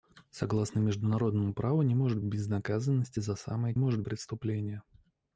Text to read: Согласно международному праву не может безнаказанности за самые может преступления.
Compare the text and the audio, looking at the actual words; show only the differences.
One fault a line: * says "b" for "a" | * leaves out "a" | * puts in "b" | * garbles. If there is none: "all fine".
all fine